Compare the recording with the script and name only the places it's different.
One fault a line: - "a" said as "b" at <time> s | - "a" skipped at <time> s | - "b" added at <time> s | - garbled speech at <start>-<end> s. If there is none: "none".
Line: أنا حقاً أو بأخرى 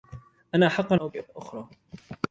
none